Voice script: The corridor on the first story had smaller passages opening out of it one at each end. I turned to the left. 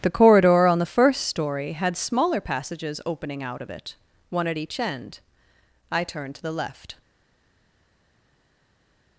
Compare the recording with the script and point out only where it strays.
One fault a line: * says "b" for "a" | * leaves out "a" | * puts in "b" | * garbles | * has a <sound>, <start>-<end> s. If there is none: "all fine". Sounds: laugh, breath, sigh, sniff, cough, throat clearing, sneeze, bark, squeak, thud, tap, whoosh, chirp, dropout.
all fine